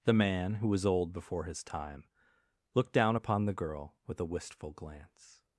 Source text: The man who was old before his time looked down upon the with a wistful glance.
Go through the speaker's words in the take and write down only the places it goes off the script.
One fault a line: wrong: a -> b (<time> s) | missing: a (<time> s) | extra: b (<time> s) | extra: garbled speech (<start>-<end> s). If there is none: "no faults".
extra: girl (3.5 s)